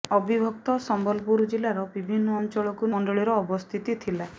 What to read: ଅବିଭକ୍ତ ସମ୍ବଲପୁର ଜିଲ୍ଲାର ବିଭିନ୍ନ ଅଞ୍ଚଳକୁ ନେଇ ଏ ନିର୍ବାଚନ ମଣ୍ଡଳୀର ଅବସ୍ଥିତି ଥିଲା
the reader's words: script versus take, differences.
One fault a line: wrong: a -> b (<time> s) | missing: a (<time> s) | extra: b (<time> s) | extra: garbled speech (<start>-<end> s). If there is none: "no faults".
missing: ନେଇ ଏ ନିର୍ବାଚନ (2.9 s)